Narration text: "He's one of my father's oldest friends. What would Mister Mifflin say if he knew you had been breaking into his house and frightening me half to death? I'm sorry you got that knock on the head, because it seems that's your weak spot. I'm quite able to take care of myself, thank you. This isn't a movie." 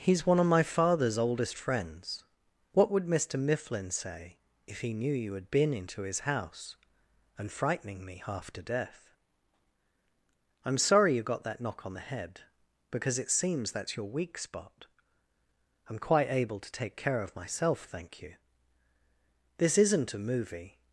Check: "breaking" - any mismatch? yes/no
yes